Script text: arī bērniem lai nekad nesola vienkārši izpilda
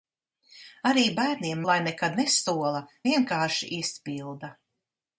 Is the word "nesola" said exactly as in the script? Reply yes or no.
yes